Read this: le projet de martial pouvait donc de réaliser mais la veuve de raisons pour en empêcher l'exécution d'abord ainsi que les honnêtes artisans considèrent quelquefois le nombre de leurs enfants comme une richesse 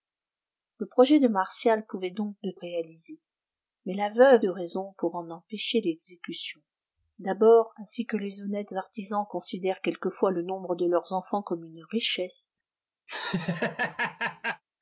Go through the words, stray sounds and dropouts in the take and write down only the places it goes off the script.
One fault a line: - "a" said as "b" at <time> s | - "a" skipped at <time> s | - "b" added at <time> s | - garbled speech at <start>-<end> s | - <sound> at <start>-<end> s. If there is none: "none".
- laugh at 13.1-14.6 s